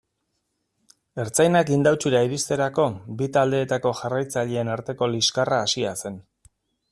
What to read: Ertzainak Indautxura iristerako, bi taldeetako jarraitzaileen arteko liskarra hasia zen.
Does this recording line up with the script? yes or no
yes